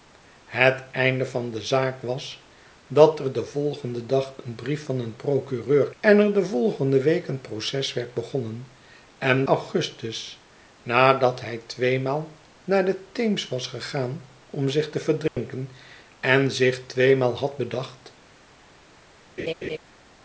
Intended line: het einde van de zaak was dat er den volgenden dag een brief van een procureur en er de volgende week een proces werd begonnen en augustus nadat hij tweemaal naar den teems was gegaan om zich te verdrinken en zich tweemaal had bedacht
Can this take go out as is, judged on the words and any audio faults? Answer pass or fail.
fail